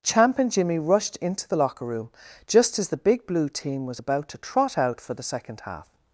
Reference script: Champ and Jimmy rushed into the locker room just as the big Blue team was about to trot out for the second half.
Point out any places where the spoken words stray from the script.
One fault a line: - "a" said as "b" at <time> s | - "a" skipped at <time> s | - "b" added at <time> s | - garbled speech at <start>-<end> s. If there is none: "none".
none